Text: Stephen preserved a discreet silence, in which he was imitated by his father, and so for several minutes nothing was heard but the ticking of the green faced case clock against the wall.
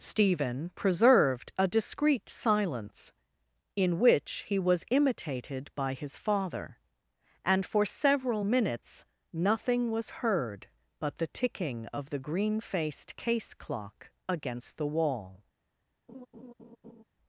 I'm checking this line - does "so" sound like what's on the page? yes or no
no